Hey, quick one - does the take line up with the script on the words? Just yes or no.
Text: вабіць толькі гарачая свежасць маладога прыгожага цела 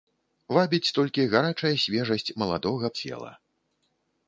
no